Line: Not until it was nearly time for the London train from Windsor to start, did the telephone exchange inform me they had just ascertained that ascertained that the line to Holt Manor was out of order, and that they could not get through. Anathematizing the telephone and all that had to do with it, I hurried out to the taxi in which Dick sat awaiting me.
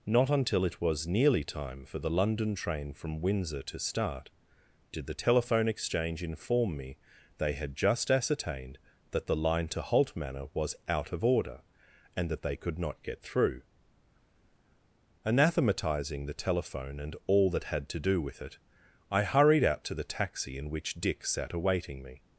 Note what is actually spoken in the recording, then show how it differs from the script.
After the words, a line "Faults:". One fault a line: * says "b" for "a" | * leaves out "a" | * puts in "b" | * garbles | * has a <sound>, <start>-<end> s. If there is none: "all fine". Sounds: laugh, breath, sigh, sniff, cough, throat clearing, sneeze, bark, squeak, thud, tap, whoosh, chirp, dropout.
Not until it was nearly time for the London train from Windsor to start, did the telephone exchange inform me they had just ascertained that the line to Holt Manor was out of order, and that they could not get through. Anathematizing the telephone and all that had to do with it, I hurried out to the taxi in which Dick sat awaiting me.
Faults:
* leaves out "ascertained that"